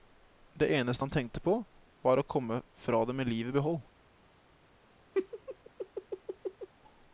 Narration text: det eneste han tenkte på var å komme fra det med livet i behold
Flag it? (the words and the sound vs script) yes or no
yes